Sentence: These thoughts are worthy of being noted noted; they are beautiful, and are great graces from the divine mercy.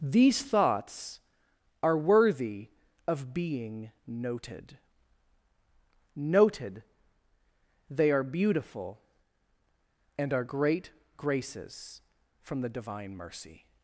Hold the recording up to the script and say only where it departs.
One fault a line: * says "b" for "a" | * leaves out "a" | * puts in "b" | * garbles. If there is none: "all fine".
all fine